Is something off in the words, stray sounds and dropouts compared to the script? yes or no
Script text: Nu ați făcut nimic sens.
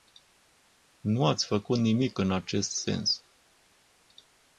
yes